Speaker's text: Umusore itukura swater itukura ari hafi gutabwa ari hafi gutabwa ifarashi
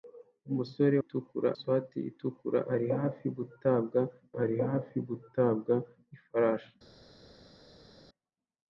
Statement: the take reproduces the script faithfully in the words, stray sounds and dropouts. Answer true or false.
true